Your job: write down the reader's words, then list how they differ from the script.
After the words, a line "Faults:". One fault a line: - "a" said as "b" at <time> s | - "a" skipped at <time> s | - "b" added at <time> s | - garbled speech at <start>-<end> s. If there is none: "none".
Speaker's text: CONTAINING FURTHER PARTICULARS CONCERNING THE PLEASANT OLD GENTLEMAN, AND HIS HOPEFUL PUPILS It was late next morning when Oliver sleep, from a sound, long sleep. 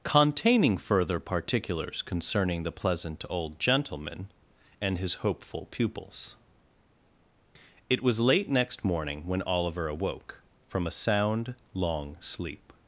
CONTAINING FURTHER PARTICULARS CONCERNING THE PLEASANT OLD GENTLEMAN, AND HIS HOPEFUL PUPILS It was late next morning when Oliver awoke, from a sound, long sleep.
Faults:
- "sleep" said as "awoke" at 9.9 s